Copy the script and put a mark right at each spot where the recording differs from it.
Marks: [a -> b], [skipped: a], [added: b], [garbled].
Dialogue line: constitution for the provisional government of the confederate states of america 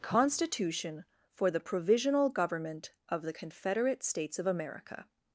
constitution for the provisional government of the confederate states of america